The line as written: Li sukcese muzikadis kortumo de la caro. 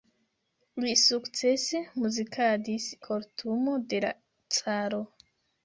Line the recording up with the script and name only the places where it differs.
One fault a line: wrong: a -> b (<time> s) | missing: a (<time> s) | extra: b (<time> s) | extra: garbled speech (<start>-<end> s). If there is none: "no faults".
no faults